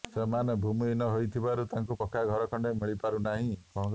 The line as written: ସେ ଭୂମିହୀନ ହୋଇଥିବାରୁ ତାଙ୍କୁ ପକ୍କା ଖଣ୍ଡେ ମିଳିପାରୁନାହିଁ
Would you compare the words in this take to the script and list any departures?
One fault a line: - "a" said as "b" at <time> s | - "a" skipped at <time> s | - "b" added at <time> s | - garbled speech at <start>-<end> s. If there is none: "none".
- "ସେ" said as "ସେମାନେ" at 0.1 s
- "ଘର" added at 2.3 s